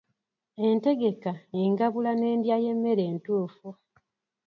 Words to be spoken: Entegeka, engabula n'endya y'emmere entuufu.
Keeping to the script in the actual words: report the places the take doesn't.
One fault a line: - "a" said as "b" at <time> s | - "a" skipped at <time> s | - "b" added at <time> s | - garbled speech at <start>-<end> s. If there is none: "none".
none